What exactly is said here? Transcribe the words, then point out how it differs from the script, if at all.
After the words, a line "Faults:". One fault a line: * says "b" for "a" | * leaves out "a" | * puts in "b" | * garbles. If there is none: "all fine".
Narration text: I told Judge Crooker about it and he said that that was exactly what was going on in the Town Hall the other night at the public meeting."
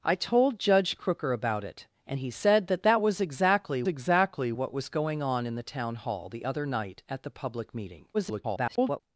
I told Judge Crooker about it and he said that that was exactly exactly what was going on in the Town Hall the other night at the public meeting." [garbled]
Faults:
* puts in "exactly"
* garbles